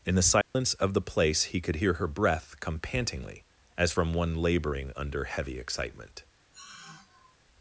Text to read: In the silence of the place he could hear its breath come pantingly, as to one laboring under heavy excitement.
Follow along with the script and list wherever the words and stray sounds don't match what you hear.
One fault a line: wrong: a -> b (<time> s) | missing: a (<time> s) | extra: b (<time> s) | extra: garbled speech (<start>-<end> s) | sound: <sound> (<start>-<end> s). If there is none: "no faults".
sound: dropout (0.4-0.6 s)
wrong: its -> her (1.9 s)
wrong: to -> from (3.9 s)
sound: sigh (6.5-7.4 s)